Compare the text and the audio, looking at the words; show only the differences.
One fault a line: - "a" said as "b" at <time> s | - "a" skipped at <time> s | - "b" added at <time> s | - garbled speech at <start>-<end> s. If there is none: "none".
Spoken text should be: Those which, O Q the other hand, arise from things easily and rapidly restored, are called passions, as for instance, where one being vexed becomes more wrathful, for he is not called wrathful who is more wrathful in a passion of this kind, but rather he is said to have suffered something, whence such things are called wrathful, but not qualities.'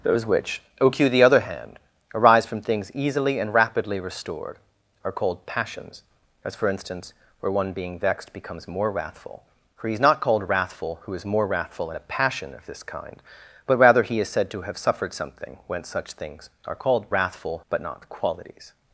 none